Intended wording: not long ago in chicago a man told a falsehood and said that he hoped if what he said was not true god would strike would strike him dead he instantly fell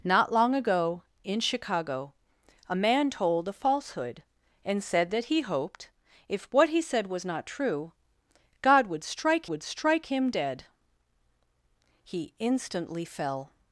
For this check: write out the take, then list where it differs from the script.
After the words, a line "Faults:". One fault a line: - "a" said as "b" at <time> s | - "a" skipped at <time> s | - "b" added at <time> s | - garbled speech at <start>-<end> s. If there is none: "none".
not long ago in chicago a man told a falsehood and said that he hoped if what he said was not true god would strike would strike him dead he instantly fell
Faults:
none